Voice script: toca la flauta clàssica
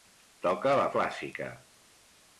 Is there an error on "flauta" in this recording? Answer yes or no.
yes